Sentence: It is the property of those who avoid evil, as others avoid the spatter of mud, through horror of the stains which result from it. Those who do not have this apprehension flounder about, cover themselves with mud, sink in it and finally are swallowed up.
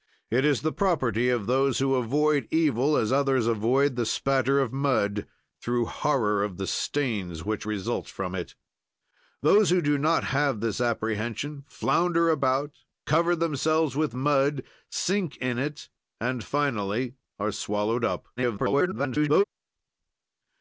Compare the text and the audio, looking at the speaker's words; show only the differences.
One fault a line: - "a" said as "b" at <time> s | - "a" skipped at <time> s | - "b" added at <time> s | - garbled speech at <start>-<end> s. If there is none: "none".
- garbled speech at 18.4-19.4 s